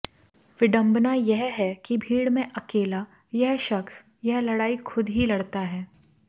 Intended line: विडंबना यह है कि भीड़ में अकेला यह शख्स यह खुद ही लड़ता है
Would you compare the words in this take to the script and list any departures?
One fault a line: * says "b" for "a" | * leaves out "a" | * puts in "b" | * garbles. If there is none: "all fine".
* puts in "लड़ाई"